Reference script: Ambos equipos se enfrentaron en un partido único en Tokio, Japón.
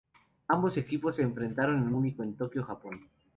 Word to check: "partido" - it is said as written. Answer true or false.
false